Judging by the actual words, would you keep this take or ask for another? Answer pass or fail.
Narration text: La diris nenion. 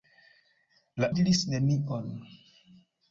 pass